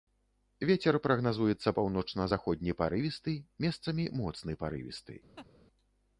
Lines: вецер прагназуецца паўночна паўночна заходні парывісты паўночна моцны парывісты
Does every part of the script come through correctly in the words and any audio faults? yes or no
no